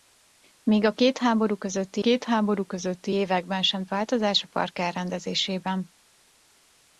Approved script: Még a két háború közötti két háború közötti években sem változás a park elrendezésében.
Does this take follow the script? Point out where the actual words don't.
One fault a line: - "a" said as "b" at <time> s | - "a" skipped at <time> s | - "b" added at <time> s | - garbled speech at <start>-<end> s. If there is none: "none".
none